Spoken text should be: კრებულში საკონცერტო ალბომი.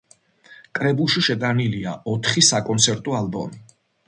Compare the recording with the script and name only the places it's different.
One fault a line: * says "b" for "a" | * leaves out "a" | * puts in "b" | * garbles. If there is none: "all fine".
* puts in "შეტანილია ოთხი"